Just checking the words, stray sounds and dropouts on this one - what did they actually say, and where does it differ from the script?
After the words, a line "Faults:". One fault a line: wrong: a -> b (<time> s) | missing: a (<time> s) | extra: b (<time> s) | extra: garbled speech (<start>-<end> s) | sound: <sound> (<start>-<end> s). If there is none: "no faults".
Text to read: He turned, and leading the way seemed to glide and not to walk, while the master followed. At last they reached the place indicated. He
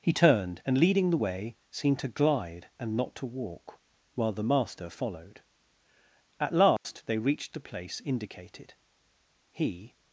He turned, and leading the way seemed to glide and not to walk, while the master followed. At last they reached the place indicated. He
Faults:
sound: dropout (6.8-6.8 s)